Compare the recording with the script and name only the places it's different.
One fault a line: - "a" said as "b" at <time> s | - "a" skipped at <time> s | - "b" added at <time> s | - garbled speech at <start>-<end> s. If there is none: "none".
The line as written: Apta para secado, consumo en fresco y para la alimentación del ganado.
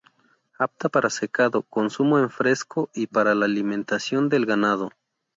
none